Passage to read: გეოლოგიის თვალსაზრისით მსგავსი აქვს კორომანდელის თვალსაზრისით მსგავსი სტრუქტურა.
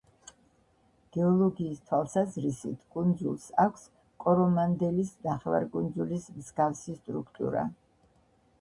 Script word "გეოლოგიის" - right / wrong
right